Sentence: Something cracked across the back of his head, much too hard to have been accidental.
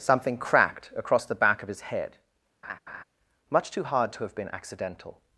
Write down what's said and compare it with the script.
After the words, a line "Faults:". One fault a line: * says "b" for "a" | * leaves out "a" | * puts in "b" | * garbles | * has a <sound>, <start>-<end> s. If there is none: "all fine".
Something cracked across the back of his head, much too hard to have been accidental.
Faults:
* has a laugh, 2.6-3.0 s